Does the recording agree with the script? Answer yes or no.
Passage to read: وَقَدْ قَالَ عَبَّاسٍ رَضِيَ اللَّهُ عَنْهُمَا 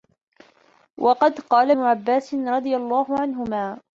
yes